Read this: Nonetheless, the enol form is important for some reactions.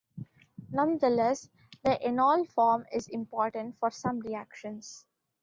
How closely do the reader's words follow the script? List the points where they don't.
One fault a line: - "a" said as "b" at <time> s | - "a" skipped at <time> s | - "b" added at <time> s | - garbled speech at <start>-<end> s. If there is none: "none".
none